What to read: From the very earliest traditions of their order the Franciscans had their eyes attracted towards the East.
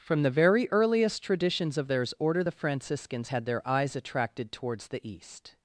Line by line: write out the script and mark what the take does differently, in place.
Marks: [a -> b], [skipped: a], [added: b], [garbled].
From the very earliest traditions of [their -> theirs] order the Franciscans had their eyes attracted towards the East.